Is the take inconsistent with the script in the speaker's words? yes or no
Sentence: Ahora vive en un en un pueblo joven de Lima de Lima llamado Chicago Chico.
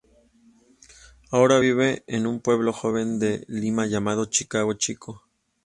yes